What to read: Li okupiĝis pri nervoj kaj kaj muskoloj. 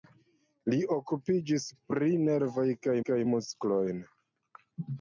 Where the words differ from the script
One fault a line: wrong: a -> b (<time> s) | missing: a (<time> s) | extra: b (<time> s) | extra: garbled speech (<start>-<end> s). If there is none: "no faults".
no faults